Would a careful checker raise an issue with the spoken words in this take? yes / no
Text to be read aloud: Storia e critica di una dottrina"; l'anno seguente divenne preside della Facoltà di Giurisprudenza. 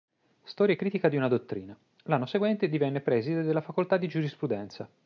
no